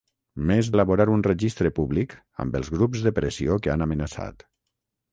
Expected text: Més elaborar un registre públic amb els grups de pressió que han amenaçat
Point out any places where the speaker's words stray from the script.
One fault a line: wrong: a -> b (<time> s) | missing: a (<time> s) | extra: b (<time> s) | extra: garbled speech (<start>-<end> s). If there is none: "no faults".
no faults